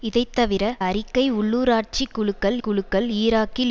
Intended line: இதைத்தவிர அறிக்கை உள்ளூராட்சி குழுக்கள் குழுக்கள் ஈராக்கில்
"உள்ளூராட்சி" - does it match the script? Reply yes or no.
yes